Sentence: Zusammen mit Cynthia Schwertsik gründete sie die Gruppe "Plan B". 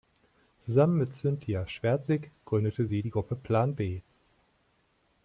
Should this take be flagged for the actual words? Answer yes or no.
no